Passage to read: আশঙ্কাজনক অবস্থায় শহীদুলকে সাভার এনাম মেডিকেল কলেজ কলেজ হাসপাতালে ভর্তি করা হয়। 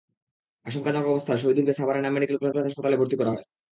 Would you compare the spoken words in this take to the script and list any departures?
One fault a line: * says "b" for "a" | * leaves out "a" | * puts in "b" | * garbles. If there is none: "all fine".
all fine